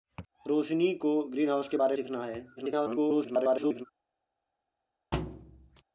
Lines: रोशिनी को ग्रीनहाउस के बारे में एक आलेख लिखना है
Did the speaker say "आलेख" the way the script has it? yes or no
no